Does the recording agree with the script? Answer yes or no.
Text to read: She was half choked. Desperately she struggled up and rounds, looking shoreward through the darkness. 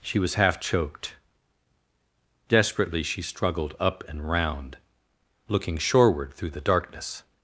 no